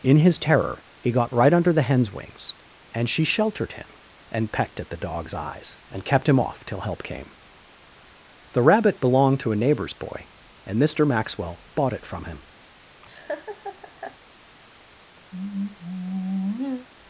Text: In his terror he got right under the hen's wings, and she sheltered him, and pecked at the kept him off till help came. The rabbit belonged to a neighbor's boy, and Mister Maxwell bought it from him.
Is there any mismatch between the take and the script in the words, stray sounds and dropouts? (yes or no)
yes